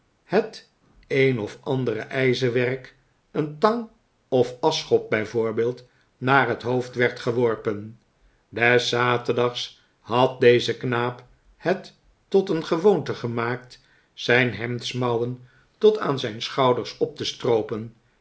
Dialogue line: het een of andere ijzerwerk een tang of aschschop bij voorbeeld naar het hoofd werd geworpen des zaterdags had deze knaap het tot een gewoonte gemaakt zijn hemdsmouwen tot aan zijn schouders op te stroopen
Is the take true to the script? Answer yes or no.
yes